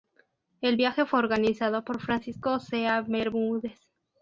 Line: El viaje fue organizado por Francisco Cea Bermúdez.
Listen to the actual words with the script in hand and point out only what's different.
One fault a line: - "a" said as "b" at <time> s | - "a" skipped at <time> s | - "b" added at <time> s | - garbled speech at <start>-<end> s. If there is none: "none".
none